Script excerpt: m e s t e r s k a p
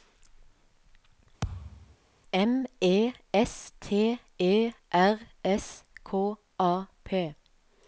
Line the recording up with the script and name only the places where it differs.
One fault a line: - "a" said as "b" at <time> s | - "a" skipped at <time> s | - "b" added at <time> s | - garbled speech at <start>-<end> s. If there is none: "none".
none